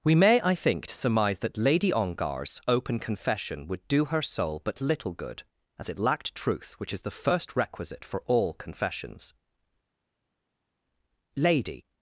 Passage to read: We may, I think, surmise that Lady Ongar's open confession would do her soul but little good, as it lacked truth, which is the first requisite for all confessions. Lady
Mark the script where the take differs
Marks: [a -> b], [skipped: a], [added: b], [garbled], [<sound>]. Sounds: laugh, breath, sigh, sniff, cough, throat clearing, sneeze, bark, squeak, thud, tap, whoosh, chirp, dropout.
We may, I think, surmise that Lady Ongar's open confession would do her soul but little good, as it lacked truth, which is the first requisite for all confessions. Lady